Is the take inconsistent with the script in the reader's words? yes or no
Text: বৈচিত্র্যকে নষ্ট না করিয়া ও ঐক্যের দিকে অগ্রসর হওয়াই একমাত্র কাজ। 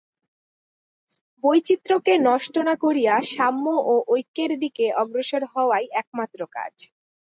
yes